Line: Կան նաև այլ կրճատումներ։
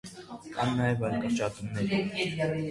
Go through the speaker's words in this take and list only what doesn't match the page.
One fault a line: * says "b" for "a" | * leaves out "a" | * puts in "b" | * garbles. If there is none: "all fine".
all fine